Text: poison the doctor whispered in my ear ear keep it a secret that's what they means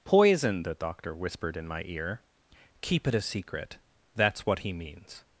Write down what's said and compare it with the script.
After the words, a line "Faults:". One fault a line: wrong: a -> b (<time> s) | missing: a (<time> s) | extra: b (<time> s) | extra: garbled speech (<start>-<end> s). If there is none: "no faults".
poison the doctor whispered in my ear keep it a secret that's what he means
Faults:
missing: ear (2.2 s)
wrong: they -> he (4.6 s)